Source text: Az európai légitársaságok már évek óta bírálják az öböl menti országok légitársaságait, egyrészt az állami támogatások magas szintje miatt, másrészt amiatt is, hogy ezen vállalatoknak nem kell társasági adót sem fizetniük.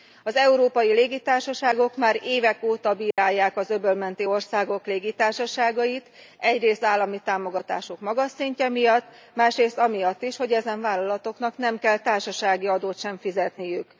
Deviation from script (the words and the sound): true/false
true